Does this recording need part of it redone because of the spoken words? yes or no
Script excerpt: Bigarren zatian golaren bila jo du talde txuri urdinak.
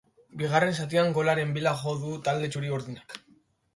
no